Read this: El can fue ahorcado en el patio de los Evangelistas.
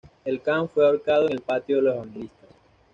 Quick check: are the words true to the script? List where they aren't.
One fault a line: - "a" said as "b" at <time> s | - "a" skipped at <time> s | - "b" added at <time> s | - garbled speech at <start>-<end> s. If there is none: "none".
none